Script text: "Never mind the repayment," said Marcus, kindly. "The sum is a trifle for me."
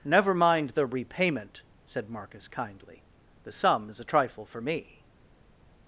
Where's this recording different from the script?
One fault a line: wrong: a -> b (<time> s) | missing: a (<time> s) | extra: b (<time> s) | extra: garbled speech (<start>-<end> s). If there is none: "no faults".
no faults